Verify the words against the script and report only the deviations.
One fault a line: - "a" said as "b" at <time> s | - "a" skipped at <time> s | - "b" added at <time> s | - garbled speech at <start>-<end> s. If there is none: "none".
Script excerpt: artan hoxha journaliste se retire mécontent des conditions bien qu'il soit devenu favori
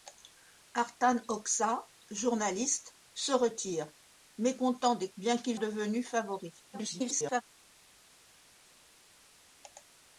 - "conditions" skipped at 5.1 s
- "soit" skipped at 5.6 s
- garbled speech at 6.7-7.4 s